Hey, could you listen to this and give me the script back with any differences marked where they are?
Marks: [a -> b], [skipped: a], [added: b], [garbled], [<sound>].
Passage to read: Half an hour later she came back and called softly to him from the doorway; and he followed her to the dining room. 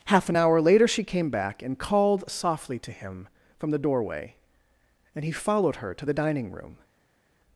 Half an hour later she came back and called softly to him from the doorway; and he followed her to the dining room.